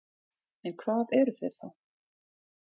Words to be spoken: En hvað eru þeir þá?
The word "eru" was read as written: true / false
true